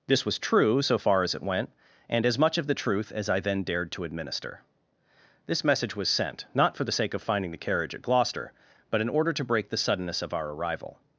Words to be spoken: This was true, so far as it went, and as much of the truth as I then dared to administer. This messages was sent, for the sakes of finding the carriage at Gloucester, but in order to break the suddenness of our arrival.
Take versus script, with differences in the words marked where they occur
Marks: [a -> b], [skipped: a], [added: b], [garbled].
This was true, so far as it went, and as much of the truth as I then dared to administer. This [messages -> message] was sent, [added: not] for the [sakes -> sake] of finding the carriage at Gloucester, but in order to break the suddenness of our arrival.